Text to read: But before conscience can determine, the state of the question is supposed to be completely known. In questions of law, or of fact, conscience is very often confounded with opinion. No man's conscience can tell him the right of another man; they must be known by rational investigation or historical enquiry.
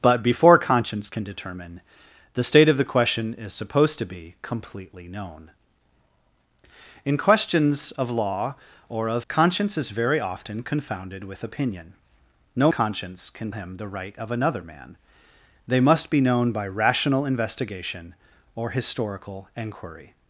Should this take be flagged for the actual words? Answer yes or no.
yes